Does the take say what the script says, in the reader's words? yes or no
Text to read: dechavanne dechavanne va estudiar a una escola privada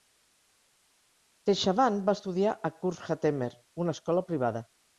no